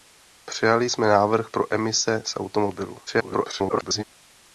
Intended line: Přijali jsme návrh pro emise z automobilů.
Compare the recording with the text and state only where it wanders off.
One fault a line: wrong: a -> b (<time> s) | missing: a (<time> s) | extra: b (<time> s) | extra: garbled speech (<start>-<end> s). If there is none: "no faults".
extra: garbled speech (3.1-4.0 s)